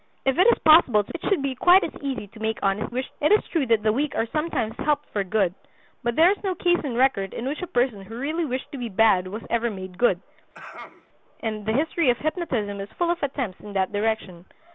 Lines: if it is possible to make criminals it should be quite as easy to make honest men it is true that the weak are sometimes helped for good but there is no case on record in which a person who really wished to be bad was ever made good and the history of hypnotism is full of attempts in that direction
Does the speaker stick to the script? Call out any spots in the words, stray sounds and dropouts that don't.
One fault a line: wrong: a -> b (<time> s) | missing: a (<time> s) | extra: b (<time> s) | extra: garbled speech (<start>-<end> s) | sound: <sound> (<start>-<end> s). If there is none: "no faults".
missing: make criminals (1.1 s)
wrong: men -> wished (2.9 s)
sound: throat clearing (10.5-11.1 s)